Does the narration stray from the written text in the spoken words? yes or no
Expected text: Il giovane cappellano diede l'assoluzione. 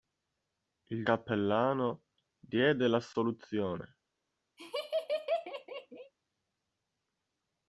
yes